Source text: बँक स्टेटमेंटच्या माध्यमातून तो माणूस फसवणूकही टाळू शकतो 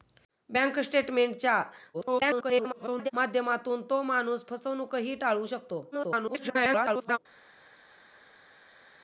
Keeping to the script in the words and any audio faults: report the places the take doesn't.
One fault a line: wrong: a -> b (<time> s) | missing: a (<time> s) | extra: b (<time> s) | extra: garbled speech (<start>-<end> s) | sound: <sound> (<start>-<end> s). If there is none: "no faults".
extra: garbled speech (1.9-3.1 s)
extra: garbled speech (5.9-7.2 s)